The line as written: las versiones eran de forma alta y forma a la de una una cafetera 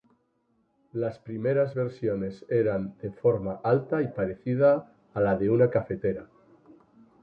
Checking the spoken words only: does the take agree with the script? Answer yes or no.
no